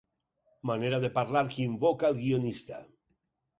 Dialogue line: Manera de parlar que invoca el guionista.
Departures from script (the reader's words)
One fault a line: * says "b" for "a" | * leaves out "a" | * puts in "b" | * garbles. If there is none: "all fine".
all fine